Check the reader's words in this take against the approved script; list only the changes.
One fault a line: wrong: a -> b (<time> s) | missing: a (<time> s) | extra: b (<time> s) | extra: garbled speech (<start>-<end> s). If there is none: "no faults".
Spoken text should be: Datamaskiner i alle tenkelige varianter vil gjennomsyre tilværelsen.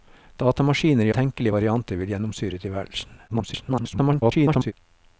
missing: alle (1.1 s)
extra: garbled speech (3.3-4.7 s)